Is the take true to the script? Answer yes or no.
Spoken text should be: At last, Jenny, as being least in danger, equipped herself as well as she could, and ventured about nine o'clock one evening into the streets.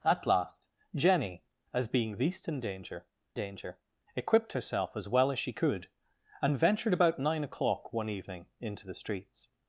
no